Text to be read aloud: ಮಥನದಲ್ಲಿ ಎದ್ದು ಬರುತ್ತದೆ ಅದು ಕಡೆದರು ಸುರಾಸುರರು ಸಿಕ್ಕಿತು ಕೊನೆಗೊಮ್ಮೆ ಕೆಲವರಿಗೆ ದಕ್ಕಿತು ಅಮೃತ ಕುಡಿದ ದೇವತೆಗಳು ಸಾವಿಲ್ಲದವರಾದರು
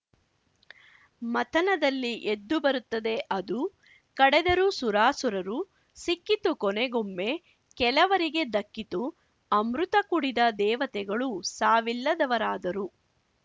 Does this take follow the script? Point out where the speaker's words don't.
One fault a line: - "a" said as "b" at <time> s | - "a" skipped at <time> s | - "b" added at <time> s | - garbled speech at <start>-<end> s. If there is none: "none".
none